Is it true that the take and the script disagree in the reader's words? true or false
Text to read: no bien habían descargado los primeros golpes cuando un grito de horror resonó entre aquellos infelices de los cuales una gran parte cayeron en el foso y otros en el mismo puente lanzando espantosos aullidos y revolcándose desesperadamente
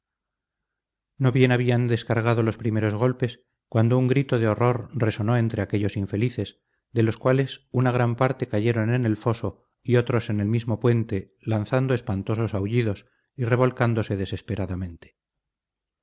false